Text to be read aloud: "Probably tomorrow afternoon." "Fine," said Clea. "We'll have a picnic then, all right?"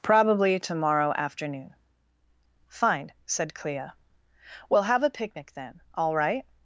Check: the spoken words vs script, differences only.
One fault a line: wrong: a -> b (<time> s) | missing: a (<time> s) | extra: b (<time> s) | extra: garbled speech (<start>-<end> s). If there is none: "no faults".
no faults